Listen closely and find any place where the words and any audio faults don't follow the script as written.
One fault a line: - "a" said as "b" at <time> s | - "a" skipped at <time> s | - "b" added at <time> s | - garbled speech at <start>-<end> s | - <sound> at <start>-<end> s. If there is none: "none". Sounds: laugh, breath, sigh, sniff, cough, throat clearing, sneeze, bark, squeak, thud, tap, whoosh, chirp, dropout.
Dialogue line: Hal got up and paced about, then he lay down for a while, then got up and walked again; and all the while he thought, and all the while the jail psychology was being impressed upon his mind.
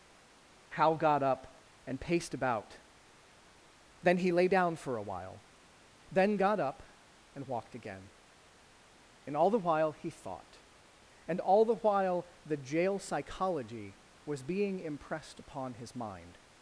none